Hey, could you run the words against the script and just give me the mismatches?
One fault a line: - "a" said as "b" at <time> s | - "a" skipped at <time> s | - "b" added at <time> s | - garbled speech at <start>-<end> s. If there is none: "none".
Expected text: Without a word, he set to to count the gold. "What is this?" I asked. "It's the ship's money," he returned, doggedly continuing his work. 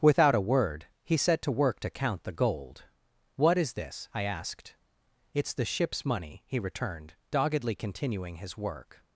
- "work" added at 1.5 s